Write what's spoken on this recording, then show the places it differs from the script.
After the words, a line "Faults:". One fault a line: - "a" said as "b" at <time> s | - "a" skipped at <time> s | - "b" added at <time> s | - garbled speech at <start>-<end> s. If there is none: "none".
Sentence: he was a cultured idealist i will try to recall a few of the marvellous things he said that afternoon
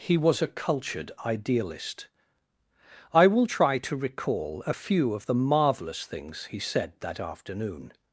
he was a cultured idealist i will try to recall a few of the marvellous things he said that afternoon
Faults:
none